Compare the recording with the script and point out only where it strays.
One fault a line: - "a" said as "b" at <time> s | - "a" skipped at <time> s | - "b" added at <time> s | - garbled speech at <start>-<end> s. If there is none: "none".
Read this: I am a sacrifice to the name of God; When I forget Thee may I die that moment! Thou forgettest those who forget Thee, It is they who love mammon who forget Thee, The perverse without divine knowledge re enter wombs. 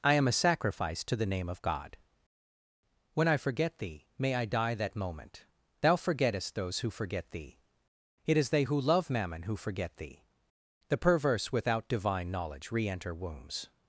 none